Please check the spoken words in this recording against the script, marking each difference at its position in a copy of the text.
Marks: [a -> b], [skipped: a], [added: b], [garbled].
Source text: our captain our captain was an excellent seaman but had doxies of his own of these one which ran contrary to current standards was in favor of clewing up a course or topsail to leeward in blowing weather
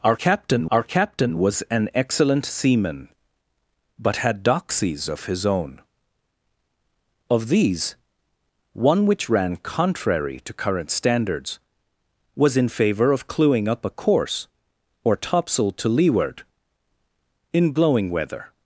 our captain our captain was an excellent seaman but had doxies of his own of these one which ran contrary to current standards was in favor of clewing up a course or topsail to leeward in blowing weather